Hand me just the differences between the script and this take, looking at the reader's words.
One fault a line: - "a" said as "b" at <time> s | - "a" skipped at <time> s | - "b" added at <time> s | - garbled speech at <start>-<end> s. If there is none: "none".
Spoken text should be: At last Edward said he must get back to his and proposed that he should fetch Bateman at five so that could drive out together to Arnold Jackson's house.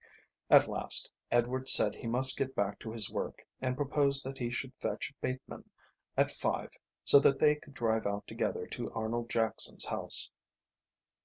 - "work" added at 3.1 s
- "they" added at 7.4 s